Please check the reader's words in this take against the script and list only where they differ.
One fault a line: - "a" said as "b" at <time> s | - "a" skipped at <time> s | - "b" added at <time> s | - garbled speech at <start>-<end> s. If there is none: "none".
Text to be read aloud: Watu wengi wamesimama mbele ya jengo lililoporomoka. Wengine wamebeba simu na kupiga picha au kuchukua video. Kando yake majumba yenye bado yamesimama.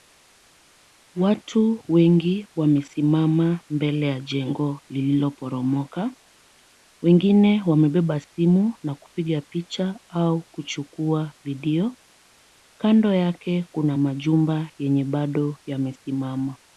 - "kuna" added at 13.7 s